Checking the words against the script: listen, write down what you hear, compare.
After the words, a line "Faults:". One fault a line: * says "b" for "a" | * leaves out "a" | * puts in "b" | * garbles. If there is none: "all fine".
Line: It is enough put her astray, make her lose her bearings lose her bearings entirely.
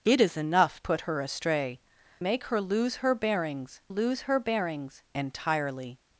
It is enough put her astray, make her lose her bearings lose her bearings entirely.
Faults:
all fine